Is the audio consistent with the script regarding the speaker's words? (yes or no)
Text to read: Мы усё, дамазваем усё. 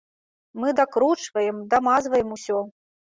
no